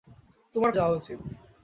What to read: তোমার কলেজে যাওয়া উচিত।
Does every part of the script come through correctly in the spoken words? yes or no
no